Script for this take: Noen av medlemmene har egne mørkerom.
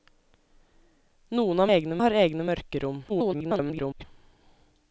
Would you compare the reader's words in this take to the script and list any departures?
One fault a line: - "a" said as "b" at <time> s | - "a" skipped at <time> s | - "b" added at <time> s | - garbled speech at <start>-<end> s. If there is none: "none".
- "medlemmene" said as "egne" at 1.7 s
- garbled speech at 3.1-4.0 s